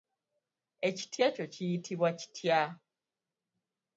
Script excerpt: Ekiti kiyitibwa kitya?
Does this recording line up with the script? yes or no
no